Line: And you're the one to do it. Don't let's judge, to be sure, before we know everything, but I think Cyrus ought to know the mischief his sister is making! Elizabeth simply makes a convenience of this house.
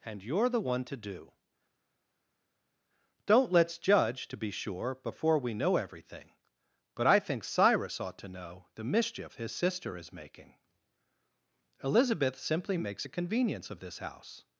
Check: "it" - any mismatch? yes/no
yes